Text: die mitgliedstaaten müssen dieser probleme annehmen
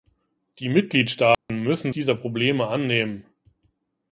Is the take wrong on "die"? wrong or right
right